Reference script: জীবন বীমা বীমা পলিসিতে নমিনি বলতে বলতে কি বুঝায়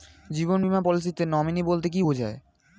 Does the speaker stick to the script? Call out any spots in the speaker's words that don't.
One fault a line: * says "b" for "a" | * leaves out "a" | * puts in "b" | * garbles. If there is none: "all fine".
* leaves out "বীমা"
* leaves out "বলতে"